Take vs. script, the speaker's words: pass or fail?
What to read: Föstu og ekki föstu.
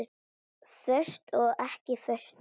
pass